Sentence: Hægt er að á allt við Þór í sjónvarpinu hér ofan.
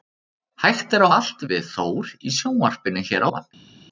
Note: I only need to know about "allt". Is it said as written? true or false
true